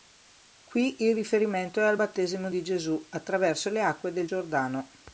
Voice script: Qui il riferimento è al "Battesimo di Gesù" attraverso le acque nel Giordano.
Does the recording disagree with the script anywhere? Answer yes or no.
yes